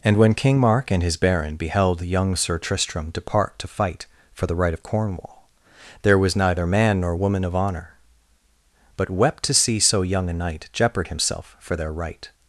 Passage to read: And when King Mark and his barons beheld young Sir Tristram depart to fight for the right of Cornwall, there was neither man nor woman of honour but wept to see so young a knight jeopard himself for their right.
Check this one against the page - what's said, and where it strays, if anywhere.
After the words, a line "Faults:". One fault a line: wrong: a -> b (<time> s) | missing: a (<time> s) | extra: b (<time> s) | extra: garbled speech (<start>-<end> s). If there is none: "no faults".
And when King Mark and his baron beheld young Sir Tristram depart to fight for the right of Cornwall, there was neither man nor woman of honour but wept to see so young a knight jeopard himself for their right.
Faults:
wrong: barons -> baron (1.2 s)